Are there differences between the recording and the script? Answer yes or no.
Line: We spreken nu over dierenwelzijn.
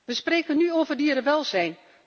no